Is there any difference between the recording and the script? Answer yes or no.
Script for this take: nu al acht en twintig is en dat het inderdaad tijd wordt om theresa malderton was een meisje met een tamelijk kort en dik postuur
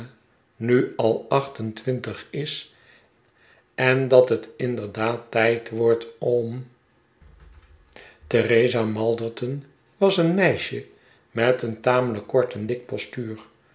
no